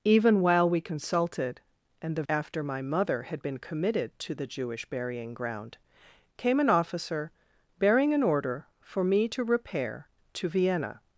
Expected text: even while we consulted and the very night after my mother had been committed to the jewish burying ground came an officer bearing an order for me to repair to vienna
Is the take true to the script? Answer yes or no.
no